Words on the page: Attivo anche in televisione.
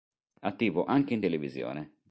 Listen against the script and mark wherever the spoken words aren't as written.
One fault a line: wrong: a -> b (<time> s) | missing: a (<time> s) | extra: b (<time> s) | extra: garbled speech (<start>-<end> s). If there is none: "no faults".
no faults